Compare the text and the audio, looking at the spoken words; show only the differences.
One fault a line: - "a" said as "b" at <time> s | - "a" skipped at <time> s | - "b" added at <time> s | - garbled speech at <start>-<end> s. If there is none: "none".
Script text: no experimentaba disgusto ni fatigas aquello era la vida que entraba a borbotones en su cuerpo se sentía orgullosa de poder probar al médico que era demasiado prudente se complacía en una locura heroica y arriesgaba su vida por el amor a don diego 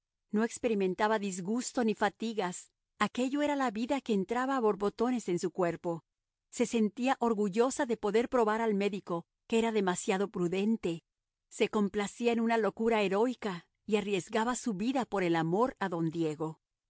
none